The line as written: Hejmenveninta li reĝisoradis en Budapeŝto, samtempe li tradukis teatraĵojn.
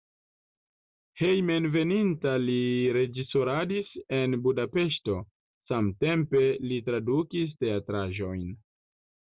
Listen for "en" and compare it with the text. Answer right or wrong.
right